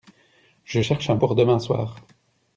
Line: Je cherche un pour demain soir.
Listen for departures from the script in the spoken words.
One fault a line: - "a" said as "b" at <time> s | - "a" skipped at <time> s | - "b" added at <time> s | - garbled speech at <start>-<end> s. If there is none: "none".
none